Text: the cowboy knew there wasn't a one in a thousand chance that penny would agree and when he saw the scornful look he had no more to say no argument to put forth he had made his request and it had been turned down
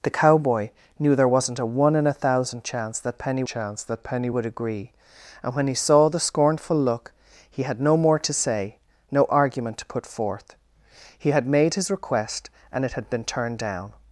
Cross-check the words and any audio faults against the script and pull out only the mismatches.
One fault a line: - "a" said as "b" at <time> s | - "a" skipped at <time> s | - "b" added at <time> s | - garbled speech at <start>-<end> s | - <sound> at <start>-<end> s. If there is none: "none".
- "chance that penny" added at 3.4 s